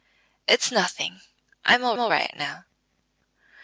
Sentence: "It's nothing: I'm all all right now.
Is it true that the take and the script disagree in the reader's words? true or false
false